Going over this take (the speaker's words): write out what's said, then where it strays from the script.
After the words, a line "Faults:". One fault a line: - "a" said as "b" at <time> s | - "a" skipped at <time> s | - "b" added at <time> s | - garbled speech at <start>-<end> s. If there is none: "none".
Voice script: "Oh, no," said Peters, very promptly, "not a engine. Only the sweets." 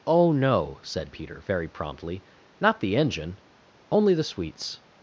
"Oh, no," said Peter, very promptly, "not the engine. Only the sweets."
Faults:
- "Peters" said as "Peter" at 1.1 s
- "a" said as "the" at 2.8 s